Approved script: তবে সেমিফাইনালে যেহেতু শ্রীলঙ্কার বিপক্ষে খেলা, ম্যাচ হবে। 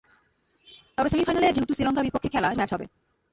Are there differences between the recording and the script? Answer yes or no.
no